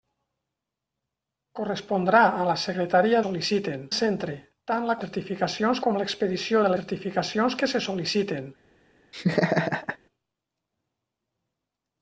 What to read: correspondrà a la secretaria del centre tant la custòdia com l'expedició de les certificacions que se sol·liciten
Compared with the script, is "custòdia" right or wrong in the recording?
wrong